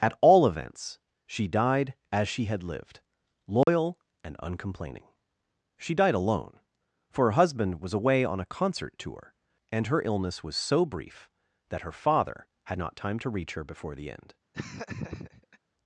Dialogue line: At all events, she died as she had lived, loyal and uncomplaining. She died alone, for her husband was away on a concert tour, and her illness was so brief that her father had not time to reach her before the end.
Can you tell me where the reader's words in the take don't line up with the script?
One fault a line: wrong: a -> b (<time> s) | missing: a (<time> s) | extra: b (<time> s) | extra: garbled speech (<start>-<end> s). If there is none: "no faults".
no faults